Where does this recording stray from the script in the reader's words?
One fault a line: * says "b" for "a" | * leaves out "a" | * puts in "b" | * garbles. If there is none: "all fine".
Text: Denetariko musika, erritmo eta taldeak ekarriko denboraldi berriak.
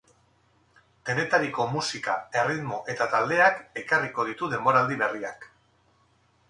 * puts in "ditu"